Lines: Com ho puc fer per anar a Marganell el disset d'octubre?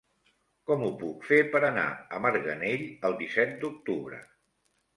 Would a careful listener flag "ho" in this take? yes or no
no